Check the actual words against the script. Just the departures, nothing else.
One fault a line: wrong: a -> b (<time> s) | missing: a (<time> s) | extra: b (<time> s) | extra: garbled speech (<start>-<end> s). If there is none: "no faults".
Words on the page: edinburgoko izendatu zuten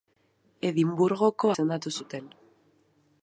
no faults